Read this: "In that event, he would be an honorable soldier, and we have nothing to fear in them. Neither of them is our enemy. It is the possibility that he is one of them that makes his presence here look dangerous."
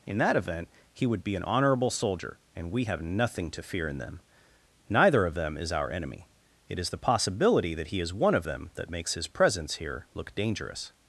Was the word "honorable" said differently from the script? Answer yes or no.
no